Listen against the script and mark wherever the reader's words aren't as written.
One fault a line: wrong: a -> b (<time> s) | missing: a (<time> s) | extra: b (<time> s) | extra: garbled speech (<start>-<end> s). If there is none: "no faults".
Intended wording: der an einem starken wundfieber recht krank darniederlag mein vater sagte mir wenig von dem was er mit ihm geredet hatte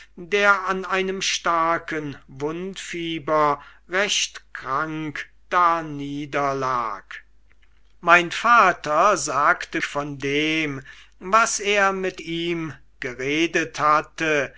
missing: mir wenig (9.8 s)